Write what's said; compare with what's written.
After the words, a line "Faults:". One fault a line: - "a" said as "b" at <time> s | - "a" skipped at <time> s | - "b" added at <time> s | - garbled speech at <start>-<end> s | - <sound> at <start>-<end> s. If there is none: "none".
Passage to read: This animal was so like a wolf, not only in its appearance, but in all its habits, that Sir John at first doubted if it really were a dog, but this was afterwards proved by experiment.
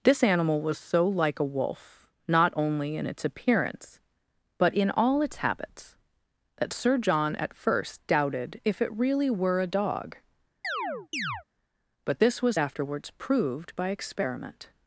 This animal was so like a wolf, not only in its appearance, but in all its habits, that Sir John at first doubted if it really were a dog, but this was afterwards proved by experiment.
Faults:
- chirp at 10.6-11.4 s